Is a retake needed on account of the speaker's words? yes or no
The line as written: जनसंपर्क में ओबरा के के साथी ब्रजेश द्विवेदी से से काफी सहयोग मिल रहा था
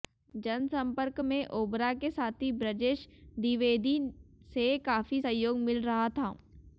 yes